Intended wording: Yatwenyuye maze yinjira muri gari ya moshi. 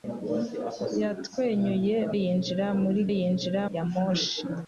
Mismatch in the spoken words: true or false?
true